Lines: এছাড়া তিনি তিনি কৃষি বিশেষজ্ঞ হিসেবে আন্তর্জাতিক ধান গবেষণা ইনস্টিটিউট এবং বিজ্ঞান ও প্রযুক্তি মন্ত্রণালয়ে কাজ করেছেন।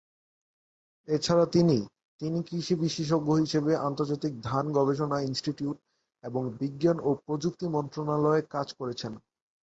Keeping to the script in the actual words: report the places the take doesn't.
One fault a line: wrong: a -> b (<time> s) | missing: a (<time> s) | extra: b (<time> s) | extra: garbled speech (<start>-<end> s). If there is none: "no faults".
no faults